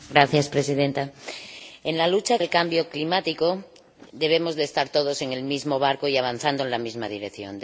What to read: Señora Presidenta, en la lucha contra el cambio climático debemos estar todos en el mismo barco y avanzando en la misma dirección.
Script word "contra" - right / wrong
wrong